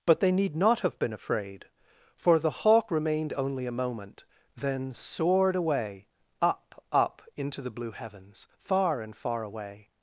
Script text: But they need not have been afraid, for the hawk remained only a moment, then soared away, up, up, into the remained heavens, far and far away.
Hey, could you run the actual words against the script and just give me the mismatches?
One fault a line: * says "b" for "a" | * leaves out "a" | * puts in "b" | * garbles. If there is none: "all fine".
* says "blue" for "remained"